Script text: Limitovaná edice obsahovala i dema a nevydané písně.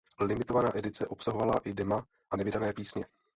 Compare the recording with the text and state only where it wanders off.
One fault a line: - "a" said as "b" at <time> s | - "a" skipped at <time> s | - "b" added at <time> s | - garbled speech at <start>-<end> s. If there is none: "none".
none